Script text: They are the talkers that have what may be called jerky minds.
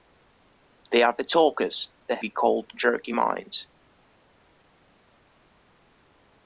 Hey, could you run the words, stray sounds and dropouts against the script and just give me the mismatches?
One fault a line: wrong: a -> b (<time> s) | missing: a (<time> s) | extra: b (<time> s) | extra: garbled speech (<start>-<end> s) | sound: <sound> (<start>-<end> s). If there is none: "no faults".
missing: have what may (2.2 s)